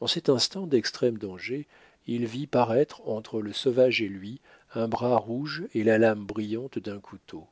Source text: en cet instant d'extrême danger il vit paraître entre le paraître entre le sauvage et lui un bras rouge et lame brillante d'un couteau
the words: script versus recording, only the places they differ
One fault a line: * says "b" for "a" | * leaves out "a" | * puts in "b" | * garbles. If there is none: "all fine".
* leaves out "paraître entre le"
* puts in "la"